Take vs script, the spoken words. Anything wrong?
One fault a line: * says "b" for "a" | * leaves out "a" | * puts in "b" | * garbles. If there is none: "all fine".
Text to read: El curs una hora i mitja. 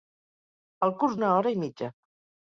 all fine